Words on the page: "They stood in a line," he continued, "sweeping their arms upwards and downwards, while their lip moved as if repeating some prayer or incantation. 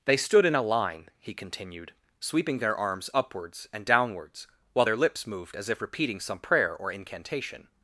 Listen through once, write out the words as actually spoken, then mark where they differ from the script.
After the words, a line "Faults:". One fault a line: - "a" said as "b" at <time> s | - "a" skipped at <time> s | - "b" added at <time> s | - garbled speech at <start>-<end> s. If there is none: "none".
"They stood in a line," he continued, "sweeping their arms upwards and downwards, while their lips moved as if repeating some prayer or incantation.
Faults:
- "lip" said as "lips" at 4.9 s